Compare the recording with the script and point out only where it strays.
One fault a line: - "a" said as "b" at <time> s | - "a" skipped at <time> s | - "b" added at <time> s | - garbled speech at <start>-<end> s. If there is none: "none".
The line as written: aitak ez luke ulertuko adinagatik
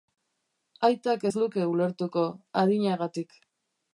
none